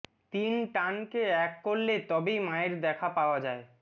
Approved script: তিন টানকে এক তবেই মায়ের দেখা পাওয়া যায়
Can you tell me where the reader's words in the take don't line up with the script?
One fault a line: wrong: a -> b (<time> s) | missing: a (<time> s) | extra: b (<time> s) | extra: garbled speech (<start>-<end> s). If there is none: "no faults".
extra: করলে (1.6 s)